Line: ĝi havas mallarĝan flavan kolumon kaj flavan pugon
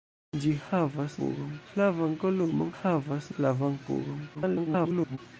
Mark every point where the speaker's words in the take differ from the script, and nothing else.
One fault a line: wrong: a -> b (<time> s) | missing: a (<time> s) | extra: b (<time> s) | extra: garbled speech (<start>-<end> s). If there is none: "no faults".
wrong: mallarĝan -> pugon (1.2 s)
wrong: kaj -> havas (2.8 s)
extra: garbled speech (4.3-5.2 s)